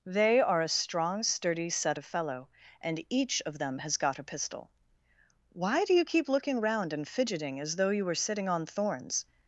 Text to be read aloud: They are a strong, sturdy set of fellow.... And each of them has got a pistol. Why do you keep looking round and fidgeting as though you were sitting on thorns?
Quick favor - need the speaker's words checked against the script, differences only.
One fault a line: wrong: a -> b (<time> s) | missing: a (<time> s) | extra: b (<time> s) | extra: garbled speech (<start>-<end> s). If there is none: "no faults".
no faults